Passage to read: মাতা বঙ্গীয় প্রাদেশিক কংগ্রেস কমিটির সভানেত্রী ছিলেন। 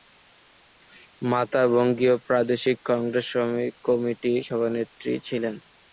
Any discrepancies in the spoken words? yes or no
no